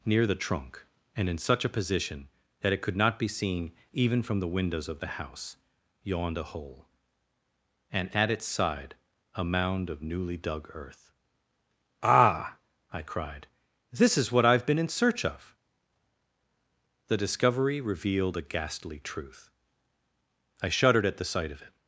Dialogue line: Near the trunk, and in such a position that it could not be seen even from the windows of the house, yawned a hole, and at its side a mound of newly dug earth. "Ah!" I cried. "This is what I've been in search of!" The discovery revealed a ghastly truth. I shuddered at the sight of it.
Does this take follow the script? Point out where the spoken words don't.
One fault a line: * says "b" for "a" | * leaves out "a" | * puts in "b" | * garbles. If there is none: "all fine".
all fine